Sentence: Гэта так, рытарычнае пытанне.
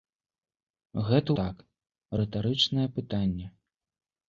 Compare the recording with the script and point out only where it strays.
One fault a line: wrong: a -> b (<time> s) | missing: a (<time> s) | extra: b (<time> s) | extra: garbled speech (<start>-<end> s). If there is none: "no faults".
no faults